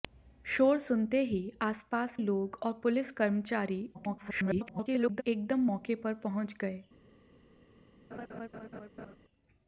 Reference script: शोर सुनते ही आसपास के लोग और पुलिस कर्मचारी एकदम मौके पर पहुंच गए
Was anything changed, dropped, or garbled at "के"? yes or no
yes